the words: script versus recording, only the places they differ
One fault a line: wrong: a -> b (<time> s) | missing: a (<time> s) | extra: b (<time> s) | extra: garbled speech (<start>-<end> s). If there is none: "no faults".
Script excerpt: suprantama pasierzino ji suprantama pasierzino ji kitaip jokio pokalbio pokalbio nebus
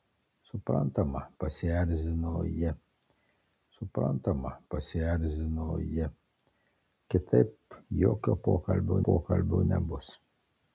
no faults